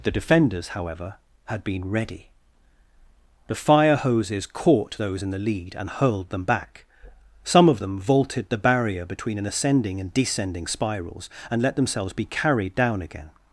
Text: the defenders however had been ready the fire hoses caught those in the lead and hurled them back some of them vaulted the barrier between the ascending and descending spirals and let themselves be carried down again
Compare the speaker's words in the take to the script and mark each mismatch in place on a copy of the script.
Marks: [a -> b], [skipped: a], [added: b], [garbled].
the defenders however had been ready the fire hoses caught those in the lead and hurled them back some of them vaulted the barrier between [the -> an] ascending and descending spirals and let themselves be carried down again